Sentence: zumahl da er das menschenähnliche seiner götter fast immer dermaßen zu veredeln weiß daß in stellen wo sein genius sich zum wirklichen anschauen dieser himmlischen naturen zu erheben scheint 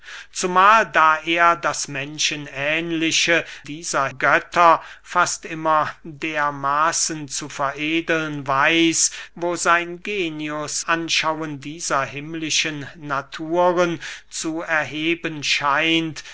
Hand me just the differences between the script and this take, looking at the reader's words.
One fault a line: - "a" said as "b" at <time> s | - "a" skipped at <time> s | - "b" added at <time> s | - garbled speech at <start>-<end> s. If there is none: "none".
- "seiner" said as "dieser" at 3.6 s
- "daß in stellen" skipped at 9.1 s
- "sich zum wirklichen" skipped at 10.8 s